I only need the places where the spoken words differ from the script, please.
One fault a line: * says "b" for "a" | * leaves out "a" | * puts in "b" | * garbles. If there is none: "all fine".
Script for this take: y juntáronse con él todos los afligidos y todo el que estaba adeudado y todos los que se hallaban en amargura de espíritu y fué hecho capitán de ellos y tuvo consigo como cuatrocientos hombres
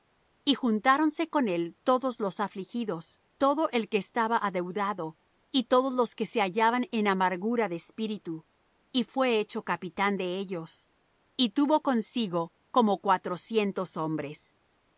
* leaves out "y"